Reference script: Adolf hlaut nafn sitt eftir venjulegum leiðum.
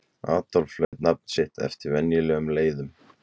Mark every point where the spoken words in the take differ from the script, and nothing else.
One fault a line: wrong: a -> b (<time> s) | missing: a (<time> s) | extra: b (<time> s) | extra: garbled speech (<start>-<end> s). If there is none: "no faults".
no faults